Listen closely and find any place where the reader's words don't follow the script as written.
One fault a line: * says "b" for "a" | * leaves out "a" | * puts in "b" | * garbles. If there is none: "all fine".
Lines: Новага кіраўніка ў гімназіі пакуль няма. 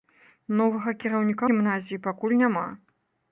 * leaves out "ў"